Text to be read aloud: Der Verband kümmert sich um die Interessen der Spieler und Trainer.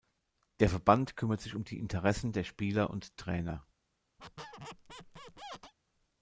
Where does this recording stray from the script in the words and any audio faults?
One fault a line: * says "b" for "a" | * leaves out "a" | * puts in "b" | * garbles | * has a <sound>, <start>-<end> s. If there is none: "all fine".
* has a squeak, 4.2-5.7 s